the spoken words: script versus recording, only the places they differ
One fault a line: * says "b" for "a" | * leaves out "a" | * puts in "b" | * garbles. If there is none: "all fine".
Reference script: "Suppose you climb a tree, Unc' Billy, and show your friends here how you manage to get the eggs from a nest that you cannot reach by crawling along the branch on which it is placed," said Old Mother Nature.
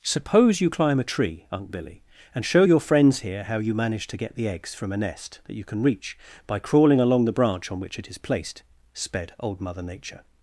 * says "can" for "cannot"
* says "sped" for "said"